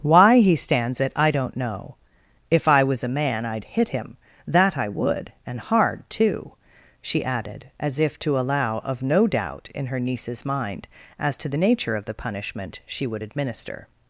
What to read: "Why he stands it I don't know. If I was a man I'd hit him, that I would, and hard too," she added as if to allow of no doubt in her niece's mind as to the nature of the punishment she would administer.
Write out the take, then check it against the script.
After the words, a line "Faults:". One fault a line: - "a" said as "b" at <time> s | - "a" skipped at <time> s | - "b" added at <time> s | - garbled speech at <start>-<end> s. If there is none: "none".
"Why he stands it I don't know. If I was a man I'd hit him, that I would, and hard too," she added as if to allow of no doubt in her niece's mind as to the nature of the punishment she would administer.
Faults:
none